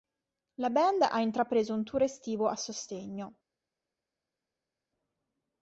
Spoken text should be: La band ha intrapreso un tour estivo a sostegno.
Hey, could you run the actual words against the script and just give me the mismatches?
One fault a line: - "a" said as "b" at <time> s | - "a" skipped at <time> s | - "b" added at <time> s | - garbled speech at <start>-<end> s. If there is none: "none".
none